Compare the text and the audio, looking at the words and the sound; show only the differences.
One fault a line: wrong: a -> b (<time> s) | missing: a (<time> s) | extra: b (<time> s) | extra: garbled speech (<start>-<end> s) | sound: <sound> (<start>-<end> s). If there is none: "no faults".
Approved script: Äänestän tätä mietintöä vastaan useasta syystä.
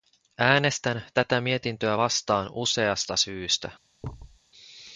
sound: thud (4.0-4.4 s)